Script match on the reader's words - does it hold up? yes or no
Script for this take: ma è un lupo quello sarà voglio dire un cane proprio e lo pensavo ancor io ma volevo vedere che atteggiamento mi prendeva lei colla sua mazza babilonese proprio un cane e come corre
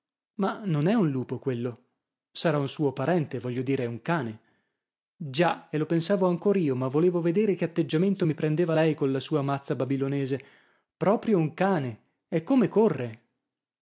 no